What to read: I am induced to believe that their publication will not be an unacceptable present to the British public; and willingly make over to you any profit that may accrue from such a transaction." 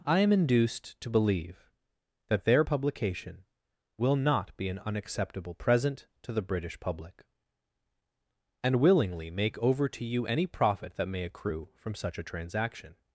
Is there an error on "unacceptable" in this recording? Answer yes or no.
no